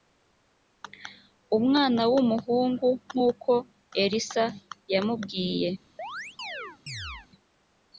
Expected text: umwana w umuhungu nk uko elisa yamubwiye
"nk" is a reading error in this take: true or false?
false